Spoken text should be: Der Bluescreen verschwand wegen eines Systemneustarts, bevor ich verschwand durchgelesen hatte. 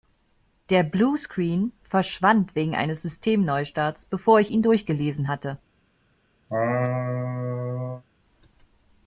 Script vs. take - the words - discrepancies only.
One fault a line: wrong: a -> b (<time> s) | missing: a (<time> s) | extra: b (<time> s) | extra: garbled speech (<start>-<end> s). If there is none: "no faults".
wrong: verschwand -> ihn (4.5 s)